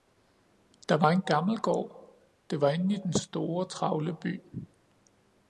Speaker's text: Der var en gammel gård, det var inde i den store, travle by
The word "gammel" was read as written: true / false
true